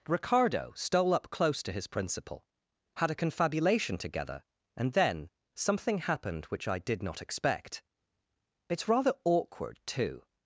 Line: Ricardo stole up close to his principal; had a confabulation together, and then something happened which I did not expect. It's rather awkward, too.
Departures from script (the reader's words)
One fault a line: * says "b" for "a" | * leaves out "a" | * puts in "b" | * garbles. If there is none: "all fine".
all fine